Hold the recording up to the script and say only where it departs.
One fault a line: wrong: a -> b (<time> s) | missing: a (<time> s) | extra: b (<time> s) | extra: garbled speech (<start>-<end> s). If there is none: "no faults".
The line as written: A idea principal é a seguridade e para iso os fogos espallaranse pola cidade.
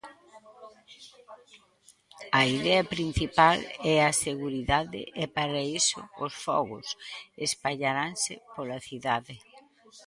no faults